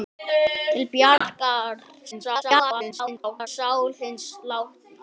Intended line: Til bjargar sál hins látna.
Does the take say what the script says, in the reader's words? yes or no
no